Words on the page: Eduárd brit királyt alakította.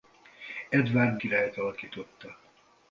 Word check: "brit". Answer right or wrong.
wrong